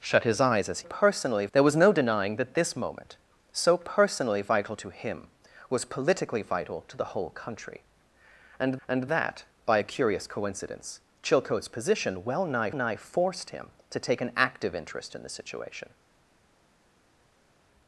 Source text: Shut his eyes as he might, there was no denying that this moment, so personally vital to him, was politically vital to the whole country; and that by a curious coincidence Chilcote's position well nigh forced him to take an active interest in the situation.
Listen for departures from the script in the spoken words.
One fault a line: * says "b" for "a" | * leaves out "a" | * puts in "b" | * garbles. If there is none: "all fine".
* says "personally" for "might"
* puts in "and"
* puts in "nigh"